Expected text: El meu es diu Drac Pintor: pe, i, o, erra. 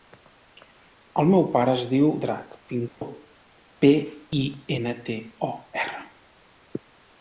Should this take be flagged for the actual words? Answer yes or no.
yes